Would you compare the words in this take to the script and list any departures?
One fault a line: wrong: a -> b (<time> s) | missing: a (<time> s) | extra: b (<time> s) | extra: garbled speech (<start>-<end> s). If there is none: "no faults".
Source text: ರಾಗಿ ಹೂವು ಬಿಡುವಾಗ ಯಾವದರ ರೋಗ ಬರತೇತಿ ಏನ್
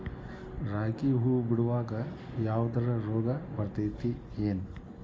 no faults